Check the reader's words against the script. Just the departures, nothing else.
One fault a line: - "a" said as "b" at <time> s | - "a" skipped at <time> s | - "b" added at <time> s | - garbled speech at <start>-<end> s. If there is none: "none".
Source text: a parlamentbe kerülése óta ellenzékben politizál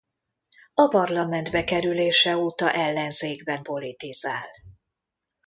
none